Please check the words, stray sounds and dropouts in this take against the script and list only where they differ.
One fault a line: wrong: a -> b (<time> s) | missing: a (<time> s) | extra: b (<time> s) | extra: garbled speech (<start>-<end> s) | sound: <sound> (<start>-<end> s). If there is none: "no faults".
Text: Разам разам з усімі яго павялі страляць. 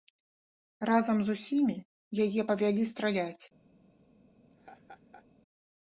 missing: разам (1.2 s)
wrong: яго -> яе (2.2 s)
sound: laugh (4.5-5.3 s)